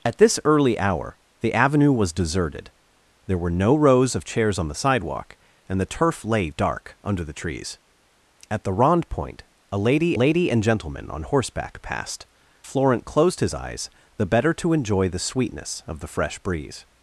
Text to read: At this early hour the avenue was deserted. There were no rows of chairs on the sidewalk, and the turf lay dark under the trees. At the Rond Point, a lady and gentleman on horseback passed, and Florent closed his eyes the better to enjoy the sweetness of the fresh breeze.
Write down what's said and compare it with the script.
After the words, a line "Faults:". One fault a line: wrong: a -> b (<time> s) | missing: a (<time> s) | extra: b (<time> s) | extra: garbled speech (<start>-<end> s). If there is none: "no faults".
At this early hour the avenue was deserted. There were no rows of chairs on the sidewalk, and the turf lay dark under the trees. At the Rond Point, a lady lady and gentleman on horseback passed, Florent closed his eyes the better to enjoy the sweetness of the fresh breeze.
Faults:
extra: lady (10.1 s)
missing: and (12.3 s)